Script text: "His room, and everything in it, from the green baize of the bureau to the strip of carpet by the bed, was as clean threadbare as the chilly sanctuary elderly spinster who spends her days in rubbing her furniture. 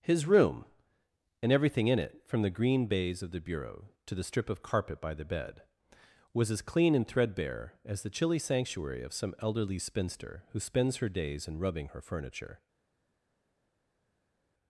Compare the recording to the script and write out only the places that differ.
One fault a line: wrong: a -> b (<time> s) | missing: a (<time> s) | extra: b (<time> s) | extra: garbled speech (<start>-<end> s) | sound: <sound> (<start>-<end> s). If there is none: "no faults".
extra: and (7.0 s)
extra: of some (9.0 s)